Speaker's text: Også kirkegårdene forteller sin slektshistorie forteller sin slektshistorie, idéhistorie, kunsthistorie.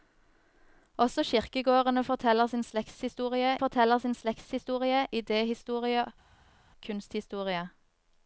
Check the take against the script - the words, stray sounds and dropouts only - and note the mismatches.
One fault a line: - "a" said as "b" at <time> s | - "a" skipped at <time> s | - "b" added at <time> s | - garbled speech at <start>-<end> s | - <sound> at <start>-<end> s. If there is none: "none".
none